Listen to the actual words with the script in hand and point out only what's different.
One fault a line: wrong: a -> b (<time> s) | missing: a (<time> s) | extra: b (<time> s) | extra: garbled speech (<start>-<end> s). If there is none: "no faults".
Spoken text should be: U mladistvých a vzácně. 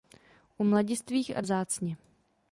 no faults